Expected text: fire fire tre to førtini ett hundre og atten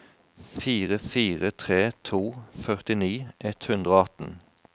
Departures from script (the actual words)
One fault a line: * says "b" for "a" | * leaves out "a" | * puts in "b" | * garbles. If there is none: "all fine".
all fine